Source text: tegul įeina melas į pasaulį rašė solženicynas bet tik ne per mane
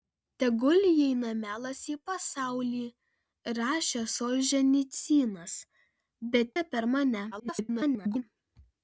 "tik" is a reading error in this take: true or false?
true